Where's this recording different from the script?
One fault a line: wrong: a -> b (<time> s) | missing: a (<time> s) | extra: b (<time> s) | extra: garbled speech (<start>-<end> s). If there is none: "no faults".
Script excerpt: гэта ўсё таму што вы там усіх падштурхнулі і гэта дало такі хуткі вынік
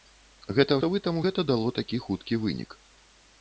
missing: ўсё таму (0.8 s)
missing: усіх падштурхнулі і (1.2 s)